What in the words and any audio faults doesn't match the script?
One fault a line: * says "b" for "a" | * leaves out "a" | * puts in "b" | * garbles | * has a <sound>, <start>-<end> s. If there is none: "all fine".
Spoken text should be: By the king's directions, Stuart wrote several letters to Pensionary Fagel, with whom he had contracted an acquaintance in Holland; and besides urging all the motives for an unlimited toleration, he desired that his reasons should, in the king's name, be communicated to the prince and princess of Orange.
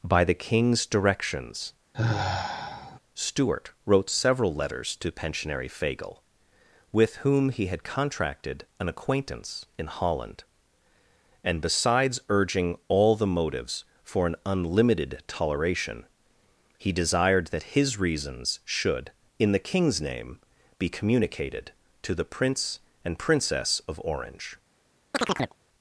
* has a sigh, 1.9-3.0 s
* has a chirp, 25.1-25.6 s